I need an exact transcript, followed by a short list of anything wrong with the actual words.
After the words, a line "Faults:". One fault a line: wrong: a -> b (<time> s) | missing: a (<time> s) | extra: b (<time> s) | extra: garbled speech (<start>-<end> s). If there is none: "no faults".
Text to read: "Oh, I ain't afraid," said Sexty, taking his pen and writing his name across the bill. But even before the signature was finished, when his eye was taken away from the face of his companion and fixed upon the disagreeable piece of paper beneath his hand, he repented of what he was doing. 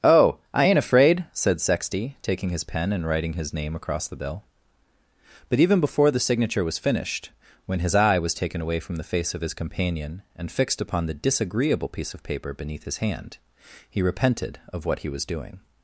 "Oh, I ain't afraid," said Sexty, taking his pen and writing his name across the bill. But even before the signature was finished, when his eye was taken away from the face of his companion and fixed upon the disagreeable piece of paper beneath his hand, he repented of what he was doing.
Faults:
no faults